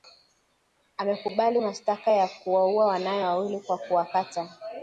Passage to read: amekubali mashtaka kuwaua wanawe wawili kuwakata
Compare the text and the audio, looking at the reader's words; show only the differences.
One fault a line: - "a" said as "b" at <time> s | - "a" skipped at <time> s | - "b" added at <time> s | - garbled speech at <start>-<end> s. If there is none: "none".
- "ya" added at 2.1 s
- "kwa" added at 3.6 s